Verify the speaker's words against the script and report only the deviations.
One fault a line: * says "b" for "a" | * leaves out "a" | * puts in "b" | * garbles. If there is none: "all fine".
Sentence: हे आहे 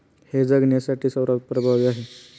* puts in "जगण्यासाठी सर्वात प्रभावी"